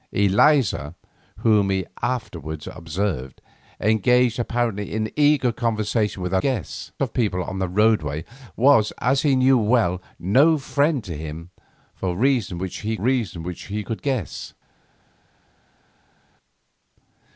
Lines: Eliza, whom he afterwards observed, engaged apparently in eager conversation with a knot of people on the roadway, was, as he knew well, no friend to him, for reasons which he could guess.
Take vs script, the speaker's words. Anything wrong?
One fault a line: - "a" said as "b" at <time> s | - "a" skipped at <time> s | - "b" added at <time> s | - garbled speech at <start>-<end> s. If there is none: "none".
- "knot" said as "guess" at 6.4 s
- "reasons which he" added at 13.0 s